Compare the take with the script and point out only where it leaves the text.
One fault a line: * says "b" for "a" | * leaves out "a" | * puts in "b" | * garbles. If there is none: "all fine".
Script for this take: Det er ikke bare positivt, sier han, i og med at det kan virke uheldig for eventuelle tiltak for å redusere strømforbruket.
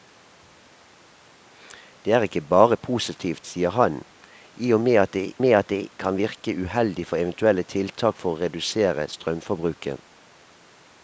* puts in "med at det"